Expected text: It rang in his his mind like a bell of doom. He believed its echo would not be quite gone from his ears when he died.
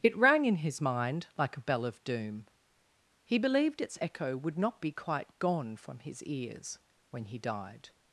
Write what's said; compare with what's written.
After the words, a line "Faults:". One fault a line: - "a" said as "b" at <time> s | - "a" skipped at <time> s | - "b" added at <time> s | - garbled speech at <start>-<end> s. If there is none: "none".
It rang in his mind like a bell of doom. He believed its echo would not be quite gone from his ears when he died.
Faults:
- "his" skipped at 0.8 s